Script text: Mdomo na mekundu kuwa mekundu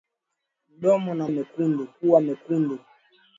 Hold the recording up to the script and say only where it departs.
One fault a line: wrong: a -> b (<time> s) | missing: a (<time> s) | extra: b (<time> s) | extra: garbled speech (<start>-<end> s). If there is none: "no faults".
no faults